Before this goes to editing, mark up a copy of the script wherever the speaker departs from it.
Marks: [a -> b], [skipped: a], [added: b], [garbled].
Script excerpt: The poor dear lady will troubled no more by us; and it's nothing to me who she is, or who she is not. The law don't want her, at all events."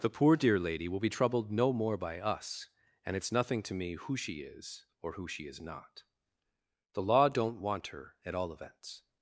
The poor dear lady will [added: be] troubled no more by us; and it's nothing to me who she is, or who she is not. The law don't want her, at all events."